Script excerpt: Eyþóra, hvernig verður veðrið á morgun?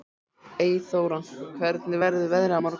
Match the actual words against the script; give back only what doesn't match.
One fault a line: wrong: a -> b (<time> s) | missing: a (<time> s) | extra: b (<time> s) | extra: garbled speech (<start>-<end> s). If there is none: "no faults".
no faults